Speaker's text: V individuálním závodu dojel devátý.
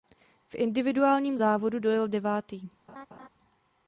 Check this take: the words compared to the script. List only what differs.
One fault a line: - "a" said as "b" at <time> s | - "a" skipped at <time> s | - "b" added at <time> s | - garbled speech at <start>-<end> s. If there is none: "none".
none